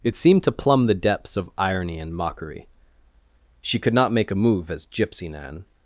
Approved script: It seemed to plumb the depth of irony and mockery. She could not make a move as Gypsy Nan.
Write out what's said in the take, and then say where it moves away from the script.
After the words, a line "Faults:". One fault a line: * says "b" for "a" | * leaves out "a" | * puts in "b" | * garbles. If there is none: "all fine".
It seemed to plumb the depths of irony and mockery. She could not make a move as Gypsy Nan.
Faults:
* says "depths" for "depth"